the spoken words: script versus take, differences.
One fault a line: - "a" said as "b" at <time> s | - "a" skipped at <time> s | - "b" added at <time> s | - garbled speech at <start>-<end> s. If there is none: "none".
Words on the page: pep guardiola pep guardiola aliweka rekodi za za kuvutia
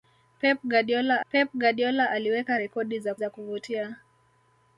none